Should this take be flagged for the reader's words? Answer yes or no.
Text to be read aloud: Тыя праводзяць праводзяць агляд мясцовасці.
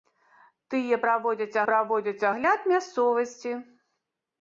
no